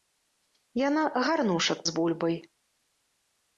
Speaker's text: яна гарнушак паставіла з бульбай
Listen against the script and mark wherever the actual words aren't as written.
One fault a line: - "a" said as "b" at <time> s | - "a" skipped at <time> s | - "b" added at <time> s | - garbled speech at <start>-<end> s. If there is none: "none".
- "паставіла" skipped at 1.8 s